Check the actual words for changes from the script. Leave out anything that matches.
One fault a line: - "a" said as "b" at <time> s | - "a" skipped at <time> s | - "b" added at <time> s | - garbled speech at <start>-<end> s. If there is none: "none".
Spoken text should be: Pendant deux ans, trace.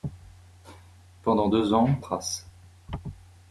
none